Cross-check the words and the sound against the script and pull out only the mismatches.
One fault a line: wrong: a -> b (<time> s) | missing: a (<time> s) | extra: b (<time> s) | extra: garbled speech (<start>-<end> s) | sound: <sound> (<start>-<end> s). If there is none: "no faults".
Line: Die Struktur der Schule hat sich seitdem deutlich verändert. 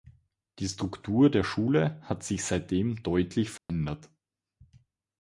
sound: dropout (3.6-3.7 s)